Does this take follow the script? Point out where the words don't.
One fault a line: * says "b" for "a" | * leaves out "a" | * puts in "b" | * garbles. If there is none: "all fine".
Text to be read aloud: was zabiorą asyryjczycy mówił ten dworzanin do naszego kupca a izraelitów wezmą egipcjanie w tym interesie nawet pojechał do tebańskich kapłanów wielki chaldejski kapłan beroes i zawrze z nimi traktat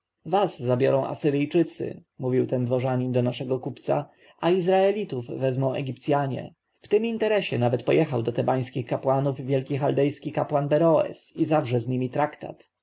all fine